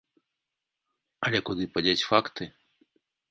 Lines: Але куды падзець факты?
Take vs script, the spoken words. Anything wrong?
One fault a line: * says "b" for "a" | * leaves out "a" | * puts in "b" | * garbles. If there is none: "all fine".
all fine